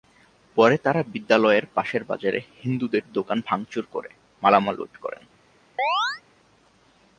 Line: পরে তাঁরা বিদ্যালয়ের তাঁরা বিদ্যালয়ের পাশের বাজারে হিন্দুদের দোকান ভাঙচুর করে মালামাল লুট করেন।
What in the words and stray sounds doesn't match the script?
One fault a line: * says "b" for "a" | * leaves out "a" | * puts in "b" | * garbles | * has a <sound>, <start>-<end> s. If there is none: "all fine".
* leaves out "তাঁরা বিদ্যালয়ের"
* has a chirp, 5.8-6.2 s